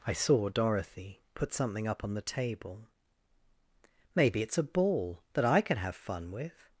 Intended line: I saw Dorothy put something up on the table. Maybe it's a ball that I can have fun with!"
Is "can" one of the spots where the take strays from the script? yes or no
no